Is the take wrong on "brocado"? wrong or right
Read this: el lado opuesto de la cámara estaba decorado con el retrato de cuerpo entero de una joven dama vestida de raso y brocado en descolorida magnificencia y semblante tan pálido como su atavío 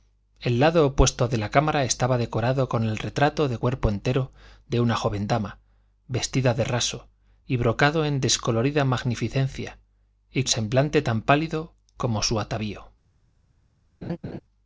right